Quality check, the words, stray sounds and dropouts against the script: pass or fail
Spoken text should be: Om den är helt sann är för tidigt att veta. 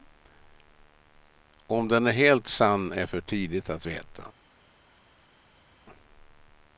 pass